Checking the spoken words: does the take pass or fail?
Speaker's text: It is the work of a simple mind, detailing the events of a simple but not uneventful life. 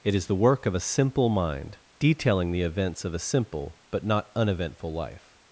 pass